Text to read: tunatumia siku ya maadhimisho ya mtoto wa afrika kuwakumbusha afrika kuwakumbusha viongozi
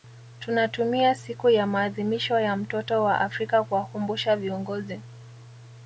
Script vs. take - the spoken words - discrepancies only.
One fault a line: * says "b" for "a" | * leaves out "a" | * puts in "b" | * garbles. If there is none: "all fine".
* leaves out "afrika kuwakumbusha"